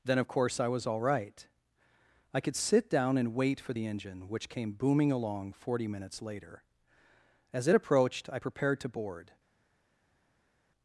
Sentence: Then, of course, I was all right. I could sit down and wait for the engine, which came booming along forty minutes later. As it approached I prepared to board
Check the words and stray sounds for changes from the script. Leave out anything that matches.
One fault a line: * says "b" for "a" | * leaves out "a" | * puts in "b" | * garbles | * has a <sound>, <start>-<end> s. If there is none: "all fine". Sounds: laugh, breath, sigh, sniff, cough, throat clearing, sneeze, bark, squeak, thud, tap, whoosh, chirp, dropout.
all fine